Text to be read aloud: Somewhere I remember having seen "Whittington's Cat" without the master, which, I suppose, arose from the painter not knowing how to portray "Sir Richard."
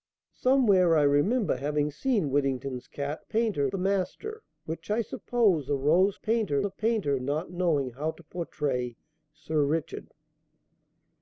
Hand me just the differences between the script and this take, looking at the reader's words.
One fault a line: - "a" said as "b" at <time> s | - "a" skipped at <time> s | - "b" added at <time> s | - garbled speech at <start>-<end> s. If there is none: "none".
- "without" said as "painter" at 3.2 s
- "from" said as "painter" at 6.1 s